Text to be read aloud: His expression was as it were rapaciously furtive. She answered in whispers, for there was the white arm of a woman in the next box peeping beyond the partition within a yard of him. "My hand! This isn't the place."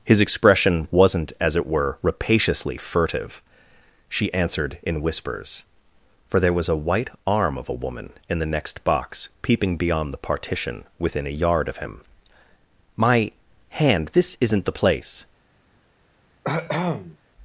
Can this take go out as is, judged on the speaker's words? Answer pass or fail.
fail